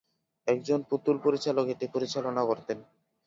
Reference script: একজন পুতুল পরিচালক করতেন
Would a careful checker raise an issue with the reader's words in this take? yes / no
yes